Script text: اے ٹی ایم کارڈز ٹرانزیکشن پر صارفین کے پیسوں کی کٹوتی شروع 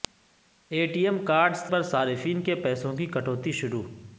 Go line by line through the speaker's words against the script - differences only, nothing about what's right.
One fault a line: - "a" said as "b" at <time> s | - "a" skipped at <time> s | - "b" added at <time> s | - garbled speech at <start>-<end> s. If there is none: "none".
- "ٹرانزیکشن" skipped at 1.6 s